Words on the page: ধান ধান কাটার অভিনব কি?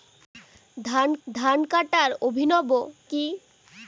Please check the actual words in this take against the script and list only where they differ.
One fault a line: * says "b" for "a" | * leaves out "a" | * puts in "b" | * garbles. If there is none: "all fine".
all fine